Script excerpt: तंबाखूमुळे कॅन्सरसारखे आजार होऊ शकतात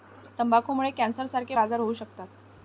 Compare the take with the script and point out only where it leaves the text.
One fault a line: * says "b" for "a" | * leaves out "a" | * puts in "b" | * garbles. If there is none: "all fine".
all fine